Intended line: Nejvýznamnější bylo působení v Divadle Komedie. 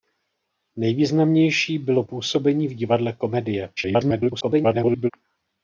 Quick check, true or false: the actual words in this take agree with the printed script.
false